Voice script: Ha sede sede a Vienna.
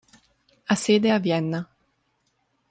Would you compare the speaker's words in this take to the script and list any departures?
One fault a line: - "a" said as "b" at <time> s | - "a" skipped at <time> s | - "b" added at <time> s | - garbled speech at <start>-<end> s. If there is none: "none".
- "sede" skipped at 1.1 s